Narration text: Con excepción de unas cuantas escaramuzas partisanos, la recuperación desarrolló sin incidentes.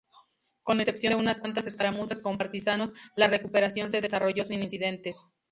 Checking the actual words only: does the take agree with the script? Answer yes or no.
no